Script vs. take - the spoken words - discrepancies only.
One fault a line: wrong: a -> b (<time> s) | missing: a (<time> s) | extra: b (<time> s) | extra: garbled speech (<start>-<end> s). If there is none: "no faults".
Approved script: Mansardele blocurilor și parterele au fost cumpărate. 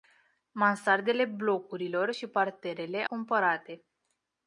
missing: au fost (3.0 s)